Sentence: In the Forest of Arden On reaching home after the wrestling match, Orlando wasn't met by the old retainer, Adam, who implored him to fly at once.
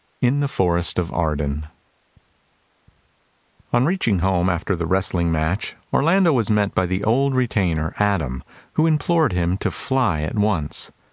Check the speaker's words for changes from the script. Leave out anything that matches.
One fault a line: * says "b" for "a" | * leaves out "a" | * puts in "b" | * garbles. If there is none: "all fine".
* says "was" for "wasn't"